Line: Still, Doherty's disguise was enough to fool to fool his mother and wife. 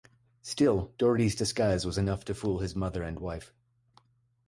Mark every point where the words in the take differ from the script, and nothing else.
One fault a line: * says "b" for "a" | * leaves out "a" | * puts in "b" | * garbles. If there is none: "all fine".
* leaves out "to fool"